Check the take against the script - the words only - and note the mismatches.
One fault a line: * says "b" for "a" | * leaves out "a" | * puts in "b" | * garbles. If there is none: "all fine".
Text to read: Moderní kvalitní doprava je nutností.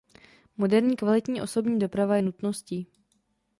* puts in "osobní"